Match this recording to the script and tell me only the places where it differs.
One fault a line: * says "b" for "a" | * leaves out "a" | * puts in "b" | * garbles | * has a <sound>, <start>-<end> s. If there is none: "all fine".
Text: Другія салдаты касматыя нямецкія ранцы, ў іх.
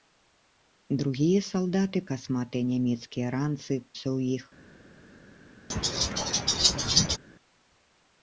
* has a laugh, 5.7-7.2 s